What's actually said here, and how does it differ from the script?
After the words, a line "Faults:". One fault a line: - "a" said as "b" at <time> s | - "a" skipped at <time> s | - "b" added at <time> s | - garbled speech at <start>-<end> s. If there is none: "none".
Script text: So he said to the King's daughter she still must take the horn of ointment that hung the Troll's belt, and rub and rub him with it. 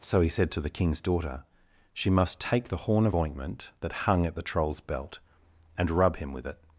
So he said to the King's daughter she must take the horn of ointment that hung at the Troll's belt, and rub him with it.
Faults:
- "still" skipped at 2.1 s
- "at" added at 4.3 s
- "and rub" skipped at 6.2 s